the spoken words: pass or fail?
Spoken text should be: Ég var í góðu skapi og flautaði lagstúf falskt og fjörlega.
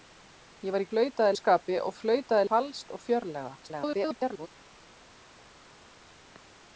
fail